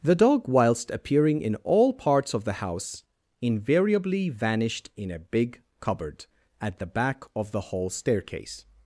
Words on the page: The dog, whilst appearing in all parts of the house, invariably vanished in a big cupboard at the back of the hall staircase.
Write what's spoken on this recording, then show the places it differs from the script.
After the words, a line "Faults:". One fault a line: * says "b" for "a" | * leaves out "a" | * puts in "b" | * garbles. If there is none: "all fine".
The dog, whilst appearing in all parts of the house, invariably vanished in a big cupboard at the back of the hall staircase.
Faults:
all fine